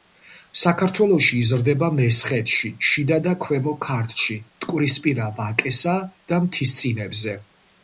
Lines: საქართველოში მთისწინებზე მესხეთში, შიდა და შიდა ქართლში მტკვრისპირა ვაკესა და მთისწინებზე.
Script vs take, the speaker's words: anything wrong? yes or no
yes